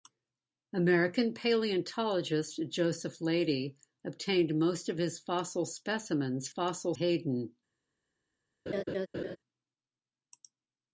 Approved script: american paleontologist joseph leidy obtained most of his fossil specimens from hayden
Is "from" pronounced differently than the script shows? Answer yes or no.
yes